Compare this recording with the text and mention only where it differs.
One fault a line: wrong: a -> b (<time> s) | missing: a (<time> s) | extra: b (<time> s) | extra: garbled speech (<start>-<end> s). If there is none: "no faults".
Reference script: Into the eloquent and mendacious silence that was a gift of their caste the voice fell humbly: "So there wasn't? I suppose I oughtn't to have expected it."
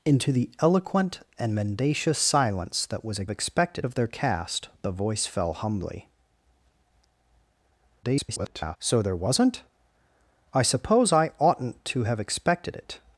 wrong: gift -> expected (3.3 s)
extra: garbled speech (8.0-8.8 s)